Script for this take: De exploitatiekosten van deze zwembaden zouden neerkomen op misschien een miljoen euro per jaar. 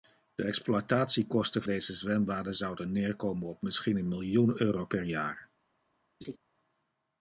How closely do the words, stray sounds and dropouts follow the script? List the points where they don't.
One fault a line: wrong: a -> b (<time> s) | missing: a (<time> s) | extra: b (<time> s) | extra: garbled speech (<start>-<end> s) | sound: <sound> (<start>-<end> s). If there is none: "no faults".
missing: van (1.6 s)
sound: laugh (6.2-6.4 s)